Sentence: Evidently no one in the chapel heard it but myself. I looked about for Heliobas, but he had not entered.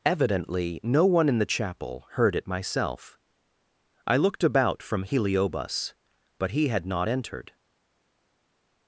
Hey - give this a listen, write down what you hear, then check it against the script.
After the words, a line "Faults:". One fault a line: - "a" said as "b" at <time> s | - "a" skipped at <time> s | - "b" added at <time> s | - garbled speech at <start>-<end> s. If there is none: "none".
Evidently no one in the chapel heard it myself. I looked about from Heliobas, but he had not entered.
Faults:
- "but" skipped at 2.5 s
- "for" said as "from" at 4.8 s